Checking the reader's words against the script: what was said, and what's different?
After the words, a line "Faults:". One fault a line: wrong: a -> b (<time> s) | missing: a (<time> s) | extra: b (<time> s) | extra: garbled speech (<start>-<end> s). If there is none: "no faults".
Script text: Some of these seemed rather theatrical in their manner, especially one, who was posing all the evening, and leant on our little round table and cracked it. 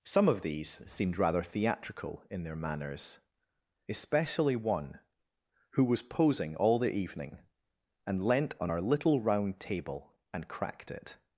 Some of these seemed rather theatrical in their manners, especially one, who was posing all the evening, and leant on our little round table and cracked it.
Faults:
wrong: manner -> manners (2.5 s)